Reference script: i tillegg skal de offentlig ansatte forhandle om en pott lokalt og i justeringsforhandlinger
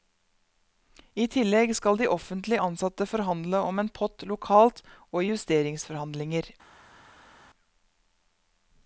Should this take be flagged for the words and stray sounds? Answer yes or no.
no